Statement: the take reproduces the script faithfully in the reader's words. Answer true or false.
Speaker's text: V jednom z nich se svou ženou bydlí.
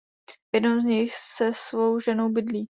true